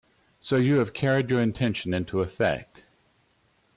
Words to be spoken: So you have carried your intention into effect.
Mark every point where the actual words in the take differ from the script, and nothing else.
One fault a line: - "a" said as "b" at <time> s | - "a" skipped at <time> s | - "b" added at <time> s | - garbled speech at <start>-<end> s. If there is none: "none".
none